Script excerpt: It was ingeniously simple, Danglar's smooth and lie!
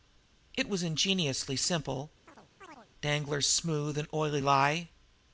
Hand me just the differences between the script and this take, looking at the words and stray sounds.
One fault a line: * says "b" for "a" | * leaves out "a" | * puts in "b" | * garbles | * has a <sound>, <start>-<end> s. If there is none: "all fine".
* has a chirp, 2.3-2.9 s
* puts in "oily"